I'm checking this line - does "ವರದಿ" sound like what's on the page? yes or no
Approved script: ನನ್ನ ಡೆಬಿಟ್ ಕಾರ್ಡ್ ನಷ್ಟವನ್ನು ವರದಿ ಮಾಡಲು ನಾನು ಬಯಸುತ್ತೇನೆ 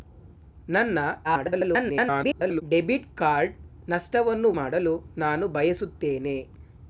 no